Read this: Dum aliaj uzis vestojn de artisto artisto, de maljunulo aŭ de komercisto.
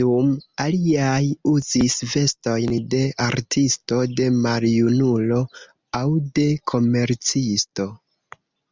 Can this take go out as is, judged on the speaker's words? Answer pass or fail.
fail